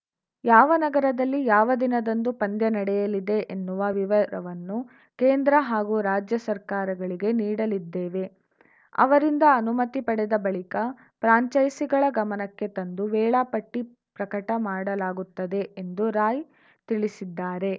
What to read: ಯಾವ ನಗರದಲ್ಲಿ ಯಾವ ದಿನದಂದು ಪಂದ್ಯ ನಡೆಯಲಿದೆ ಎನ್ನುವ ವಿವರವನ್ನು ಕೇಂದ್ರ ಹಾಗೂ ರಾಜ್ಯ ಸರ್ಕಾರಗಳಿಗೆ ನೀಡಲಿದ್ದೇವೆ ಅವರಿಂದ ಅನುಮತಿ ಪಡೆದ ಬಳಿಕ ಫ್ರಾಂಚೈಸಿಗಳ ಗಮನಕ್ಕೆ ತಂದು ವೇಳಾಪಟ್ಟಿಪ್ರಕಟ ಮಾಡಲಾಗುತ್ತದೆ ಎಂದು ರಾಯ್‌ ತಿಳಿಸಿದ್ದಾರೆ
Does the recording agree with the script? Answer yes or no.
yes